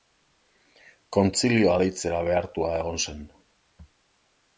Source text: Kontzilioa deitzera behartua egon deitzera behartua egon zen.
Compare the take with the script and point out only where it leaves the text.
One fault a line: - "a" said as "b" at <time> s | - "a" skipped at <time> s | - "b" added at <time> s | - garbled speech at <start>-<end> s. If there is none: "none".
- "deitzera behartua egon" skipped at 3.0 s